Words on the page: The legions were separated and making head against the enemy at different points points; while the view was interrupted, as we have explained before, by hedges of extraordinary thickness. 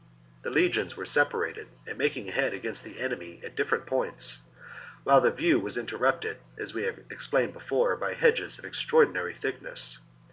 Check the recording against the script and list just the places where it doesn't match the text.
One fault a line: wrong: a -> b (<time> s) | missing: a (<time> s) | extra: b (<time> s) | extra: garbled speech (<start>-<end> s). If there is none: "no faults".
missing: points (4.4 s)